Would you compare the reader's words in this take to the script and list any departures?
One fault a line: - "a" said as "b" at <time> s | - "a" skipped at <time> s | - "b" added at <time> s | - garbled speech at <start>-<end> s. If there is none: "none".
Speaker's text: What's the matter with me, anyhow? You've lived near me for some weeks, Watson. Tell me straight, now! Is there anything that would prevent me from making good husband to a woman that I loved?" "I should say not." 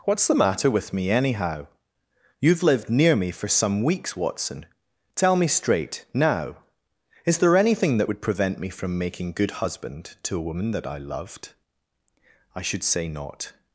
none